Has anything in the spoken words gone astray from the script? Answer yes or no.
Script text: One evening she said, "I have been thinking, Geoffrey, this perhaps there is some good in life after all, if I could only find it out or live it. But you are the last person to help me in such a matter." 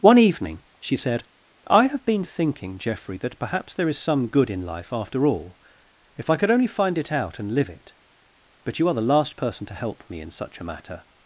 yes